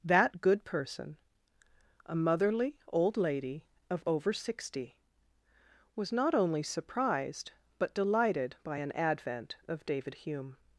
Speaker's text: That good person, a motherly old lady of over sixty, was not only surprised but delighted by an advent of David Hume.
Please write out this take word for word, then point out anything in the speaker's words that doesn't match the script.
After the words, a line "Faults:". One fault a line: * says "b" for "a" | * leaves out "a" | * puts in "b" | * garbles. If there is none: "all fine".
That good person, a motherly old lady of over sixty, was not only surprised but delighted by an advent of David Hume.
Faults:
all fine